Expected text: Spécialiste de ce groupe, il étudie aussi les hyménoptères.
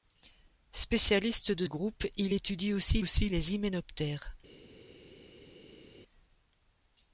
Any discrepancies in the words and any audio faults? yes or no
yes